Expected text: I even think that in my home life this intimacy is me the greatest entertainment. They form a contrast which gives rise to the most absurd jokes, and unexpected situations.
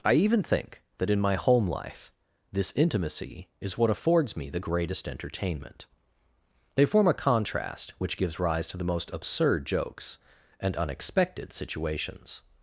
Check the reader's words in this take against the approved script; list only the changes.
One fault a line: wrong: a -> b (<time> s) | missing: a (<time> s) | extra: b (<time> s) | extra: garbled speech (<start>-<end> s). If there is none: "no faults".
extra: what affords (3.8 s)